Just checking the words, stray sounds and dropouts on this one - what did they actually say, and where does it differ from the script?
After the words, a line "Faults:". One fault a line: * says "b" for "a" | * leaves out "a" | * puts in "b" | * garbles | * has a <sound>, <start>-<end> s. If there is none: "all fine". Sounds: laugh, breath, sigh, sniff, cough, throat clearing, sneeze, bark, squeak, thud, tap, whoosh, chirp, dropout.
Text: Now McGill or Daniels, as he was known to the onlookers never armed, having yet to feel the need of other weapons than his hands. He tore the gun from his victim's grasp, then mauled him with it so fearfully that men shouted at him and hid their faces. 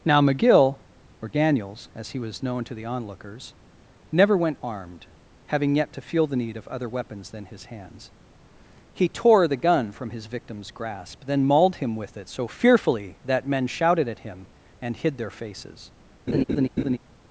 Now McGill or Daniels, as he was known to the onlookers never went armed, having yet to feel the need of other weapons than his hands. He tore the gun from his victim's grasp, then mauled him with it so fearfully that men shouted at him and hid their faces.
Faults:
* puts in "went"
* has a laugh, 16.3-17.0 s